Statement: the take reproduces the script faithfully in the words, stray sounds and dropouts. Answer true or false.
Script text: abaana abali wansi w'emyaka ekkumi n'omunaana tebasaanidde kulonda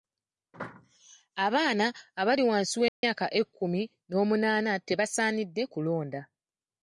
false